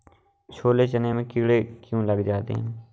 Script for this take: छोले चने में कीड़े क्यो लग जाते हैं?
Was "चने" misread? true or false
false